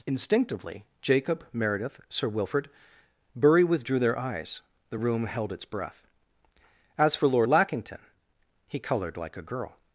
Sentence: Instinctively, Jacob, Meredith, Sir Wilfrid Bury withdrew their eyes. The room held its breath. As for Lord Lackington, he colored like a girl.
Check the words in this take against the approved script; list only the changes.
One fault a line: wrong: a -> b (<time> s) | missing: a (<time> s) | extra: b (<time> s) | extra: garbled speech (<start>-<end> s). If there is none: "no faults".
no faults